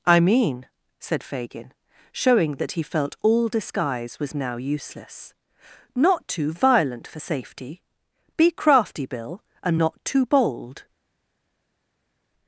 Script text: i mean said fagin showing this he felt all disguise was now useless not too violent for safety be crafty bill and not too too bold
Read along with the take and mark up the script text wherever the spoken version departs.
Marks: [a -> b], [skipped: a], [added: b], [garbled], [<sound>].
i mean said fagin showing [this -> that] he felt all disguise was now useless not too violent for safety be crafty bill and not too [skipped: too] bold